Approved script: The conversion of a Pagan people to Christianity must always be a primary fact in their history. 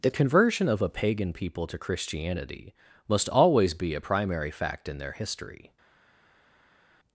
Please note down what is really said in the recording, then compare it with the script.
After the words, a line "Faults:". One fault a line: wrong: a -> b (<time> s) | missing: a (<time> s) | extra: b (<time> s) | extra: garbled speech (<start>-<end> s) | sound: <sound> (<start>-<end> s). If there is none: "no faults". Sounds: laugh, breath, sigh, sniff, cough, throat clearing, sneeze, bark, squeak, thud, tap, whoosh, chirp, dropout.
The conversion of a Pagan people to Christianity must always be a primary fact in their history.
Faults:
no faults